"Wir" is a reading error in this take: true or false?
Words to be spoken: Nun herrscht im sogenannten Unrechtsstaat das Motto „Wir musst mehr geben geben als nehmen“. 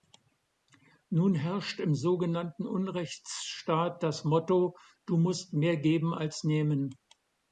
true